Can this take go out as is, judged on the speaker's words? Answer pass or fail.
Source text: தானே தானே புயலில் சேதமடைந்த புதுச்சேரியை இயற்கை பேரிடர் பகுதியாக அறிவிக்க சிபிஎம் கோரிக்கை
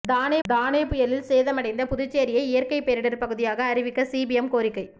pass